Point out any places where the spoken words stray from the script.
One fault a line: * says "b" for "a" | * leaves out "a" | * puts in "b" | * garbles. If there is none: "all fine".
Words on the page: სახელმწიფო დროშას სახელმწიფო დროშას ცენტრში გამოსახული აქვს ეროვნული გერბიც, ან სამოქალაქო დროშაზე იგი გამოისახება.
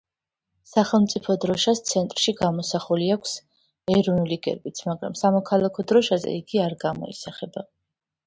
* leaves out "სახელმწიფო დროშას"
* says "მაგრამ" for "ან"
* puts in "არ"